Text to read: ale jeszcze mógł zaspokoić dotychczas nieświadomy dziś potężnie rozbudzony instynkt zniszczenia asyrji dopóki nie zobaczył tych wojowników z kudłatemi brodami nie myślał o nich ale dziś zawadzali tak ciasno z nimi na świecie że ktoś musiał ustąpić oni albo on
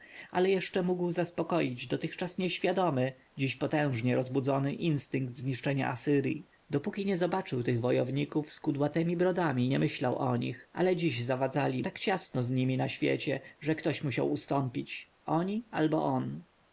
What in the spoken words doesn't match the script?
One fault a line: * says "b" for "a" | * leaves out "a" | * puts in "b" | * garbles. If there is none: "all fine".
all fine